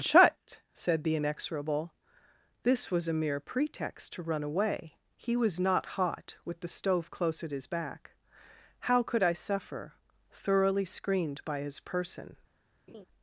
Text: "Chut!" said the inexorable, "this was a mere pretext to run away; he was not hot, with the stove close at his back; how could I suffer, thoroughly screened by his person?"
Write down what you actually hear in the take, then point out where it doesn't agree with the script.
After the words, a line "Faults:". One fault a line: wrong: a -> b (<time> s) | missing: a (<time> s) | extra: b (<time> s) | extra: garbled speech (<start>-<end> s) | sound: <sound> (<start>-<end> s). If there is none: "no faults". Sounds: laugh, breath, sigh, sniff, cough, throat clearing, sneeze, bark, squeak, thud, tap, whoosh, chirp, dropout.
"Chut!" said the inexorable, "this was a mere pretext to run away; he was not hot, with the stove close at his back; how could I suffer, thoroughly screened by his person?"
Faults:
sound: laugh (12.9-13.1 s)